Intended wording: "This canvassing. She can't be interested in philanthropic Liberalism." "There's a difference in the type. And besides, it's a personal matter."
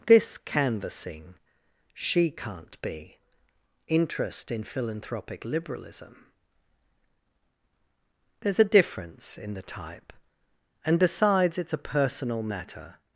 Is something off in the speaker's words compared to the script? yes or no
yes